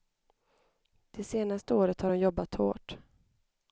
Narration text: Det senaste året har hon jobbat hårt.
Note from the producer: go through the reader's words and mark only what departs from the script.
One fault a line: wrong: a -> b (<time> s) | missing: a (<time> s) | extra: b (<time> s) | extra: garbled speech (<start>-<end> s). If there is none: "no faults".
no faults